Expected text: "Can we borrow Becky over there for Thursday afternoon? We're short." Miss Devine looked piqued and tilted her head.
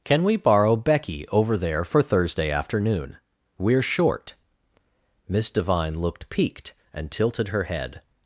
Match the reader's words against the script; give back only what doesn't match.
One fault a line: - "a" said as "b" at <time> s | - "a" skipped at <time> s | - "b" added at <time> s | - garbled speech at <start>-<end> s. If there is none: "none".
none